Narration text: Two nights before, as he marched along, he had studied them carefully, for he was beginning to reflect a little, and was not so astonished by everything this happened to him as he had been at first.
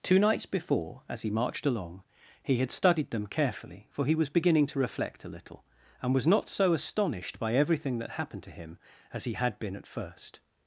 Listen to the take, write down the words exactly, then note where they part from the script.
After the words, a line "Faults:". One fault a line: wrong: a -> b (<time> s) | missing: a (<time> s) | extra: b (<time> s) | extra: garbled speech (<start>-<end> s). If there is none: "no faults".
Two nights before, as he marched along, he had studied them carefully, for he was beginning to reflect a little, and was not so astonished by everything that happened to him as he had been at first.
Faults:
wrong: this -> that (8.0 s)